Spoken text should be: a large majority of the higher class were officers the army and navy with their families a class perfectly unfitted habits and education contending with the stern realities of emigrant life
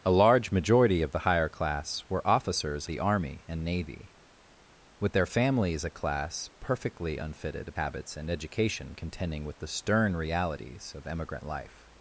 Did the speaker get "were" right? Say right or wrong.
right